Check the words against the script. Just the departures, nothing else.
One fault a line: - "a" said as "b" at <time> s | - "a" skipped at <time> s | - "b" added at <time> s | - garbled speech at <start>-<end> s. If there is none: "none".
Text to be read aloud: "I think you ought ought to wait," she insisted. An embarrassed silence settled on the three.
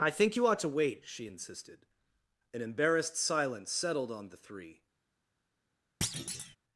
- "ought" skipped at 0.6 s